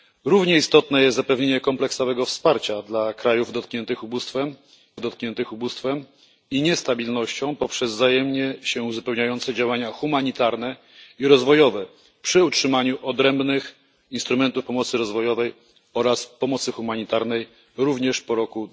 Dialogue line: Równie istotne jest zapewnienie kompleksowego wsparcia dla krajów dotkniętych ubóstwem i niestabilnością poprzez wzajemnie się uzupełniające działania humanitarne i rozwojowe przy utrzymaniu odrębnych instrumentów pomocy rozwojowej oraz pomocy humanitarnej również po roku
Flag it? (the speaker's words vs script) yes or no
yes